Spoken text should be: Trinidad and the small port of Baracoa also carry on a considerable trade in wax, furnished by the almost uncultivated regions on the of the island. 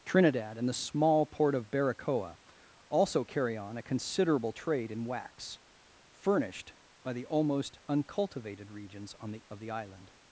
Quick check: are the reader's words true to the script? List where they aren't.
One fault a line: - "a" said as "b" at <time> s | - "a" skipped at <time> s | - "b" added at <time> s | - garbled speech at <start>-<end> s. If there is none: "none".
none